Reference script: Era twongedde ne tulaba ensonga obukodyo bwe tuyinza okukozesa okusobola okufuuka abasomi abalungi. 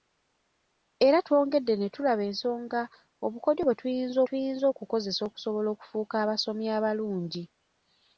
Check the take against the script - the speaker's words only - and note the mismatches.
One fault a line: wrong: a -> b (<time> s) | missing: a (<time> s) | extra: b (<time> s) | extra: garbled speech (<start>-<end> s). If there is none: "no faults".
extra: tuyinza (4.3 s)